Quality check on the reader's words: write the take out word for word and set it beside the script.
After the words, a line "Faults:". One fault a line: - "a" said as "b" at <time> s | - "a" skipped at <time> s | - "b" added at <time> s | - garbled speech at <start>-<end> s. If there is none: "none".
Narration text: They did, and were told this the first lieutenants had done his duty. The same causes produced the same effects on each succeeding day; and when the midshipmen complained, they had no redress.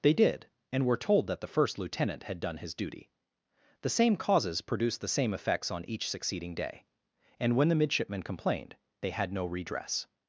They did, and were told that the first lieutenant had done his duty. The same causes produced the same effects on each succeeding day; and when the midshipmen complained, they had no redress.
Faults:
- "this" said as "that" at 1.3 s
- "lieutenants" said as "lieutenant" at 1.8 s